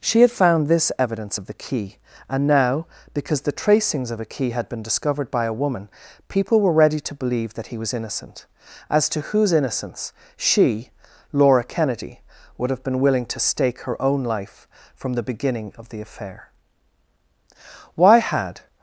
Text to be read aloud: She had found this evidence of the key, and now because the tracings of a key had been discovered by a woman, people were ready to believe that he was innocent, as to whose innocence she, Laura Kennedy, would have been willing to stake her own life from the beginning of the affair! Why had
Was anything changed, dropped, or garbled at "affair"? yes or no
no